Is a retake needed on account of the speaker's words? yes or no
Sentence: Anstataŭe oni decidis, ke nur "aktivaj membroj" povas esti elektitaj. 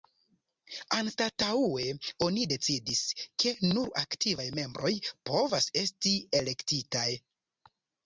no